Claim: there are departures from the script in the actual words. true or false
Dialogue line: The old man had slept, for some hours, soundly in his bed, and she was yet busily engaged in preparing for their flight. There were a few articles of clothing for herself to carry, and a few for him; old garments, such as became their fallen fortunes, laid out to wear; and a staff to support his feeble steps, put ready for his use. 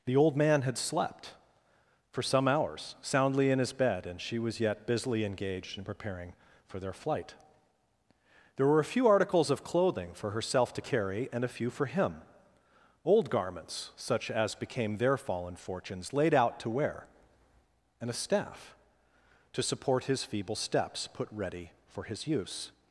false